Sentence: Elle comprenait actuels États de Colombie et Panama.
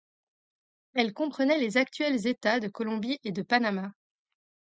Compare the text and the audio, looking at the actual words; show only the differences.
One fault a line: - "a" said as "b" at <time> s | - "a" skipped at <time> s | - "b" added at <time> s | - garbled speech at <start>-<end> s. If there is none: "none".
- "les" added at 1.6 s
- "de" added at 3.3 s